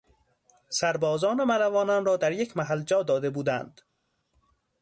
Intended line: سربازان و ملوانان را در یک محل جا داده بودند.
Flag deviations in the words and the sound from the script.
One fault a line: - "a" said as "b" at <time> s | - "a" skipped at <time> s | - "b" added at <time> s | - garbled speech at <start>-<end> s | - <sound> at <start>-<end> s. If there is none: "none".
none